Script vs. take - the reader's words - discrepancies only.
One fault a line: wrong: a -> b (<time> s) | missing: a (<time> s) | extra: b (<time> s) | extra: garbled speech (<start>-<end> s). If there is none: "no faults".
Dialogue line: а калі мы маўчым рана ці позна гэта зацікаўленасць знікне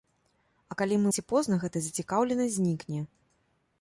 missing: маўчым рана (1.1 s)